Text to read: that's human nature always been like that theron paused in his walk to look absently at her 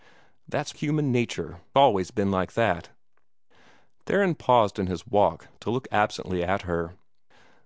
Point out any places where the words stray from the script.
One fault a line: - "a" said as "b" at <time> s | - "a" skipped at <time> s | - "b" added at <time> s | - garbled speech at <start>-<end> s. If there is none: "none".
none